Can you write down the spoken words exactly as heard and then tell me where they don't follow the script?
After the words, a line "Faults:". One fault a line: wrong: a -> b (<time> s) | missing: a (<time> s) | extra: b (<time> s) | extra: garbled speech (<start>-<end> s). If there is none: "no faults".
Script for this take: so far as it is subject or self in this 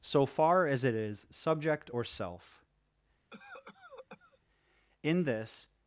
so far as it is subject or self in this
Faults:
no faults